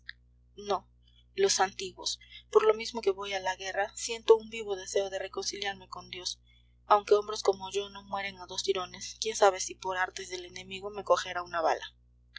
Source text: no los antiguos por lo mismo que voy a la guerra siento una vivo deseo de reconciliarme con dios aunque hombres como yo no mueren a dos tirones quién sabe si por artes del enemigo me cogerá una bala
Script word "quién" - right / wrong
right